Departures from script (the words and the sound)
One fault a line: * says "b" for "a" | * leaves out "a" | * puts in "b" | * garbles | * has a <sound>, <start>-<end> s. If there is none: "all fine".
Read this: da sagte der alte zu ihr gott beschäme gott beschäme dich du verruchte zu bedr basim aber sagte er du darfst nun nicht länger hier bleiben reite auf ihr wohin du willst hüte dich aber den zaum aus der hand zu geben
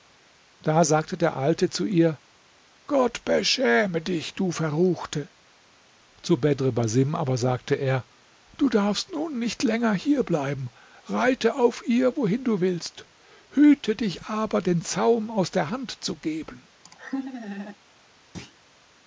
* leaves out "gott beschäme"
* has a laugh, 16.8-17.8 s
* has a thud, 18.3-18.6 s